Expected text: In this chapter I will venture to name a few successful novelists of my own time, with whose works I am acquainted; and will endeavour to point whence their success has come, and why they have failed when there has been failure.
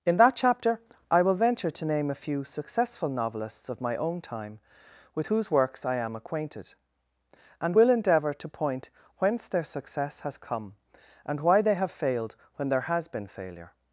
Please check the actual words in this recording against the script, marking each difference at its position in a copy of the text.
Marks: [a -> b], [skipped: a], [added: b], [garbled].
In [this -> that] chapter I will venture to name a few successful novelists of my own time, with whose works I am acquainted; and will endeavour to point whence their success has come, and why they have failed when there has been failure.